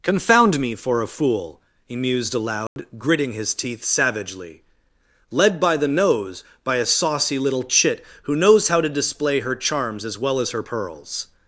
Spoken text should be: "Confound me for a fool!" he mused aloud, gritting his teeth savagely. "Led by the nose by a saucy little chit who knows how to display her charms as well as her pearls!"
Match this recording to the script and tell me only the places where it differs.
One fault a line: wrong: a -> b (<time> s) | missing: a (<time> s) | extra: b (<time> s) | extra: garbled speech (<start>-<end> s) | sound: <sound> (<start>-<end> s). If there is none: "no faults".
sound: dropout (2.7-2.8 s)